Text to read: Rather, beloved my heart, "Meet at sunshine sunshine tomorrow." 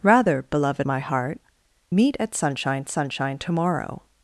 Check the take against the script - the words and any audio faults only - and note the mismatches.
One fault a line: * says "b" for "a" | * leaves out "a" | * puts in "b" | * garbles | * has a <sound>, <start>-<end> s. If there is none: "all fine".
all fine